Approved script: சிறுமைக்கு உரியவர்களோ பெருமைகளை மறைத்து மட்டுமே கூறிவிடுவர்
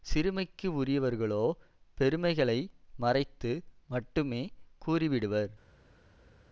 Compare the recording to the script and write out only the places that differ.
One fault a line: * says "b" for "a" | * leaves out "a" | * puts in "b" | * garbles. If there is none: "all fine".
all fine